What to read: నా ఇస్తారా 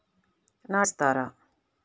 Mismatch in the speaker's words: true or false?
false